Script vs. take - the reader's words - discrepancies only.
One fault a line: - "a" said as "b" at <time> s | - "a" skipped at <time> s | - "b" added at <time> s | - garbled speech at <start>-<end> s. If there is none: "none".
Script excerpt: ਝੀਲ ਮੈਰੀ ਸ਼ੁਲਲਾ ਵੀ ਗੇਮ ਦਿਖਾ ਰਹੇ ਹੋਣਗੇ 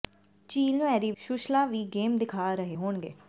none